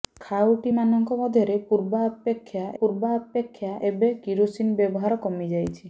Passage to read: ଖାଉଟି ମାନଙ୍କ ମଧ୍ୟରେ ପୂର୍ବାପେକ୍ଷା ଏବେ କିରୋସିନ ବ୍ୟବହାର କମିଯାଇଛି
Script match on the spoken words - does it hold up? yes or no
no